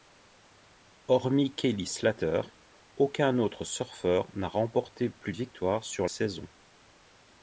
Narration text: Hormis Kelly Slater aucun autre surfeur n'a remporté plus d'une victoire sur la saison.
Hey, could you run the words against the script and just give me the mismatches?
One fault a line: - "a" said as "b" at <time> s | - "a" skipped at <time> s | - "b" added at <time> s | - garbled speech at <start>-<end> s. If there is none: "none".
- "d'une" skipped at 5.3 s
- "la" skipped at 6.1 s